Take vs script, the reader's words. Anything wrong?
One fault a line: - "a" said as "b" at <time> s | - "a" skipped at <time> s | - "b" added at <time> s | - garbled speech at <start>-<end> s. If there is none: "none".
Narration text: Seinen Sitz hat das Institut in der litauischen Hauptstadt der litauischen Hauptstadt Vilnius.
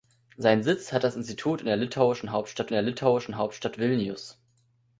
none